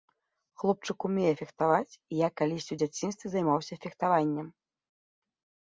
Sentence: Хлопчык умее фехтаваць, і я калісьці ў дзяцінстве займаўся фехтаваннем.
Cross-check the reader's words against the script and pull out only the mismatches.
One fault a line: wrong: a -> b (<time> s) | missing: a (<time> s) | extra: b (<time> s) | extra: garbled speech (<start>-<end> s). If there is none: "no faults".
no faults